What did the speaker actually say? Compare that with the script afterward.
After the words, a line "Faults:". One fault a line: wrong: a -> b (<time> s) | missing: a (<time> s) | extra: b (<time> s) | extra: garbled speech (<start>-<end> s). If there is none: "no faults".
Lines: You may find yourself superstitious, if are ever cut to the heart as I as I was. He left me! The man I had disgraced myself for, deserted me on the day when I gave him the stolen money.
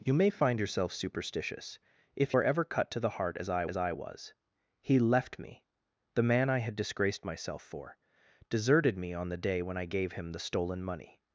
You may find yourself superstitious, if are ever cut to the heart as I as I was. He left me! The man I had disgraced myself for, deserted me on the day when I gave him the stolen money.
Faults:
no faults